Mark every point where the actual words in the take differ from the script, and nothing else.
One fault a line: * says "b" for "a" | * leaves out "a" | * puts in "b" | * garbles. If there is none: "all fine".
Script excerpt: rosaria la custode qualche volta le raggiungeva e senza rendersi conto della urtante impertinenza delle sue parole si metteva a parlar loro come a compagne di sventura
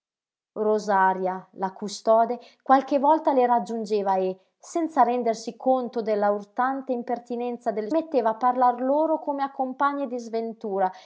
* leaves out "sue parole si"